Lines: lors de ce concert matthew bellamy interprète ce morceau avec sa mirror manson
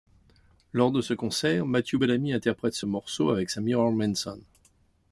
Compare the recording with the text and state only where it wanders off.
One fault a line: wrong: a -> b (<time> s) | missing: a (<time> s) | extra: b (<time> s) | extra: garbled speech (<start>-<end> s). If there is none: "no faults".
no faults